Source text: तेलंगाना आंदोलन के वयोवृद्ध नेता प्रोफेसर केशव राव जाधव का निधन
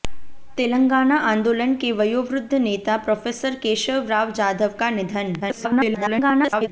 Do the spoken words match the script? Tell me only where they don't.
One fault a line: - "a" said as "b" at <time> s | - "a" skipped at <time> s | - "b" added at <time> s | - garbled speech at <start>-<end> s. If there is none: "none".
- garbled speech at 5.4-6.7 s